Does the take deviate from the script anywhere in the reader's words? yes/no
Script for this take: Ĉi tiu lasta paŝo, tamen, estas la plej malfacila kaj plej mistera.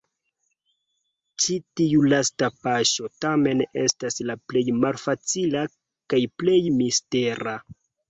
no